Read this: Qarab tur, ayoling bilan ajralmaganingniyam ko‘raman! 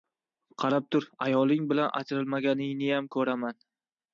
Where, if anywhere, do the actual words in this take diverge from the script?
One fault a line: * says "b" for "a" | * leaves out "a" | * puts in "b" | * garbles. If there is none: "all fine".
all fine